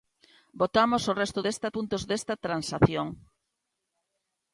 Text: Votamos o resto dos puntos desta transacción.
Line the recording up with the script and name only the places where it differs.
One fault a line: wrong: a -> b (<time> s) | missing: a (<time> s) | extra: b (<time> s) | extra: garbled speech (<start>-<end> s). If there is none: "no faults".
wrong: dos -> desta (1.4 s)